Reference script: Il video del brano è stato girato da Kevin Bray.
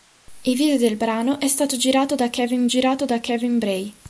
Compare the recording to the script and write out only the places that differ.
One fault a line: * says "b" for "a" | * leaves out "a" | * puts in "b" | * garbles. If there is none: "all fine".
* puts in "girato da Kevin"